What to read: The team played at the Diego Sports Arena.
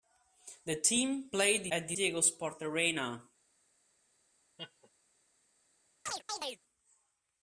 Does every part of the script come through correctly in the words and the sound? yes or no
no